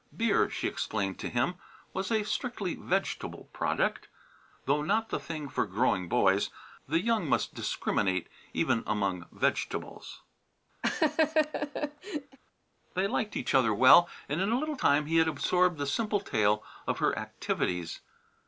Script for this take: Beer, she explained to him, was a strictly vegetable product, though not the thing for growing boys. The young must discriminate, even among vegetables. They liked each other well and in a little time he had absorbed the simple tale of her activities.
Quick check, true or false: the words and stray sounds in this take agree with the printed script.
false